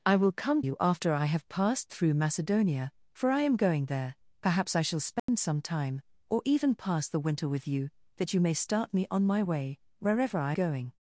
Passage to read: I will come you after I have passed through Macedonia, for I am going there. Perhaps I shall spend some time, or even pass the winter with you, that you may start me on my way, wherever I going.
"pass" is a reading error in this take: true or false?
false